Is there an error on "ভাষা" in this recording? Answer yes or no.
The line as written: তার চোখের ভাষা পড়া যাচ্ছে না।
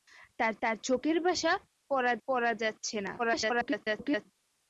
no